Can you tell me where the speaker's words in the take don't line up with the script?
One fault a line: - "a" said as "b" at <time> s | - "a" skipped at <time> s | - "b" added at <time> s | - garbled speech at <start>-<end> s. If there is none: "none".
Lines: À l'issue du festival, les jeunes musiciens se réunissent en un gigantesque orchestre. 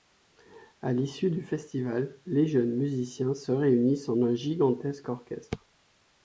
none